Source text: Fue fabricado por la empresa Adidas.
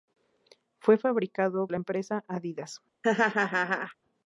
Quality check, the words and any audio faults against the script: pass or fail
fail